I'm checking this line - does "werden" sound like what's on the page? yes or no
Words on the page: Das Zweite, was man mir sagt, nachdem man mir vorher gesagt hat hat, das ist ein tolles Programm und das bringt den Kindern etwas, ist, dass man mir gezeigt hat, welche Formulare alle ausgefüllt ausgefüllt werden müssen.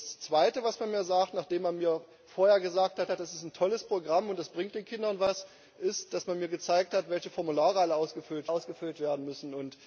yes